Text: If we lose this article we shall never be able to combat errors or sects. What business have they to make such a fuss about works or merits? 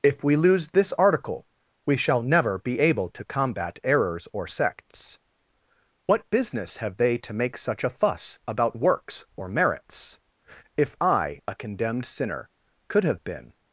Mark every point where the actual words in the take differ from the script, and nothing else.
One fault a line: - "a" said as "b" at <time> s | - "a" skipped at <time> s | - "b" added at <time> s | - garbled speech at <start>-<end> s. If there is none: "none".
- "If I a condemned sinner could have been" added at 10.8 s